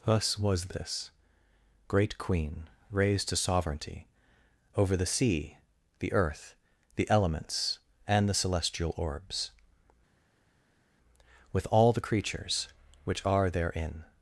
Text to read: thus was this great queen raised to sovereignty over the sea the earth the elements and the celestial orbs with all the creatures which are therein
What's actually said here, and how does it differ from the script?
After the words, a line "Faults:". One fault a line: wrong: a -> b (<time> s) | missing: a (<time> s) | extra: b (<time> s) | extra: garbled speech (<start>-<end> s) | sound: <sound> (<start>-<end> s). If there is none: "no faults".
thus was this great queen raised to sovereignty over the sea the earth the elements and the celestial orbs with all the creatures which are therein
Faults:
no faults